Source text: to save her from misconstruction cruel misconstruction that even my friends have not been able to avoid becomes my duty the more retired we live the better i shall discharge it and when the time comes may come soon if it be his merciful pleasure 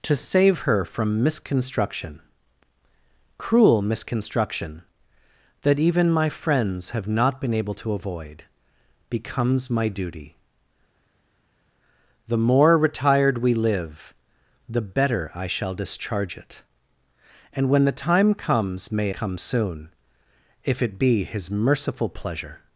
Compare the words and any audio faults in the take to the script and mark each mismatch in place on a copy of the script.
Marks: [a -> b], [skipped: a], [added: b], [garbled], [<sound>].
to save her from misconstruction cruel misconstruction that even my friends have not been able to avoid becomes my duty the more retired we live the better i shall discharge it and when the time comes may come soon if it be his merciful pleasure